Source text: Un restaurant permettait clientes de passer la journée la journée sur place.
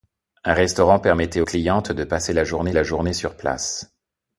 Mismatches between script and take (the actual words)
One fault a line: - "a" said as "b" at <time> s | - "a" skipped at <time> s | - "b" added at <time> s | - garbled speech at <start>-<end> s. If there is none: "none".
none